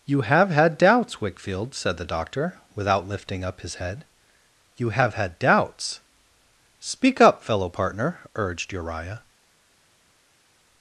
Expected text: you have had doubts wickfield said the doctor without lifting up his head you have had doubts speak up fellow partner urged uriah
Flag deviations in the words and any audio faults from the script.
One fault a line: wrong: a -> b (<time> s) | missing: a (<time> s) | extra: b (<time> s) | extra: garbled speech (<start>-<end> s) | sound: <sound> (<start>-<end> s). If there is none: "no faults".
no faults